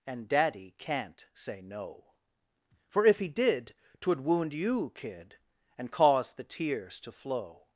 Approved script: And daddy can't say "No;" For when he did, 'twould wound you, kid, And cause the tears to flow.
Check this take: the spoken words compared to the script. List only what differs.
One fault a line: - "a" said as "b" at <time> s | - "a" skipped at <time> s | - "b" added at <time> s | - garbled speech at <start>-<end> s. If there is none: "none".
- "when" said as "if" at 3.0 s